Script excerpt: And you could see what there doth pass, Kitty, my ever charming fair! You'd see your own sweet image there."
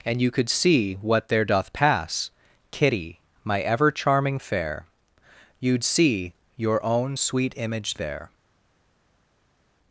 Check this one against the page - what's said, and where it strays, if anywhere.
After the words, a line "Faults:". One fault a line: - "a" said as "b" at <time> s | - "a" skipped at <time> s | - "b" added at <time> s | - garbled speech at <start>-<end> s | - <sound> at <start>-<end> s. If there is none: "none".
And you could see what there doth pass, Kitty, my ever charming fair! You'd see your own sweet image there."
Faults:
none